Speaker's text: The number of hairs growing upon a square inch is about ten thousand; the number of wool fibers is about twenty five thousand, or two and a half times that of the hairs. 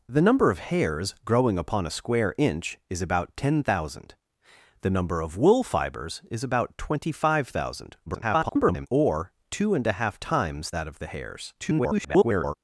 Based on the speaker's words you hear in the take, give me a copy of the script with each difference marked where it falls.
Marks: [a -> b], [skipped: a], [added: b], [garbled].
The number of hairs growing upon a square inch is about ten thousand; the number of wool fibers is about twenty five thousand, [garbled] or two and a half times that of the hairs. [garbled]